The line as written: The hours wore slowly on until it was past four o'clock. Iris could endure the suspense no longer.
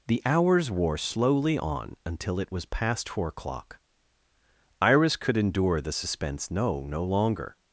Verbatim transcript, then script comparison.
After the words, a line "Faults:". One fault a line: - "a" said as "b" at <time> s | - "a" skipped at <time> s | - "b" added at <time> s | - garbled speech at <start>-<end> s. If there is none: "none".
The hours wore slowly on until it was past four o'clock. Iris could endure the suspense no no longer.
Faults:
- "no" added at 6.8 s